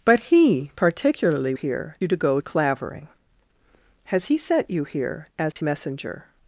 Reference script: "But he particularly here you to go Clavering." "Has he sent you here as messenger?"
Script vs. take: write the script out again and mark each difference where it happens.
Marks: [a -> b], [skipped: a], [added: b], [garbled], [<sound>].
"But he particularly here you to go Clavering." "Has he sent you here as [dropout] messenger?"